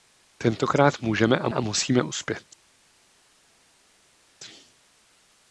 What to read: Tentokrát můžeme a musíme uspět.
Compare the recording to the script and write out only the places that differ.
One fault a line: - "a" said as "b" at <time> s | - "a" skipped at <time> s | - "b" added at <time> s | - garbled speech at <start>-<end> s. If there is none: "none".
- "a" added at 1.5 s